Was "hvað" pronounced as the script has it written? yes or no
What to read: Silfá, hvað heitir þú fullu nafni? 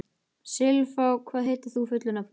yes